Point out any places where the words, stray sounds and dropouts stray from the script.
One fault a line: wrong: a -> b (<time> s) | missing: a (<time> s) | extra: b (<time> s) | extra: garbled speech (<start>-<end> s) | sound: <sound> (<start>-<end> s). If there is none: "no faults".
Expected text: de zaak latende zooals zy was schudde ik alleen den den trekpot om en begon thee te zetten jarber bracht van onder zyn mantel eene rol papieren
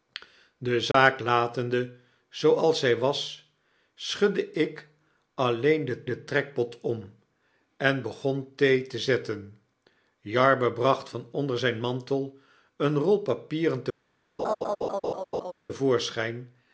sound: dropout (0.9-0.9 s)
sound: laugh (14.4-15.5 s)